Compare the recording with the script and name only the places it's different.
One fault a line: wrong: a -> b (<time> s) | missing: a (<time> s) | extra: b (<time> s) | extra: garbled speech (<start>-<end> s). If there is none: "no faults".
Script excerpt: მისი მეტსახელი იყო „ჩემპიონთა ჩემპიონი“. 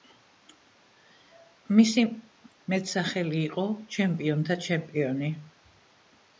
no faults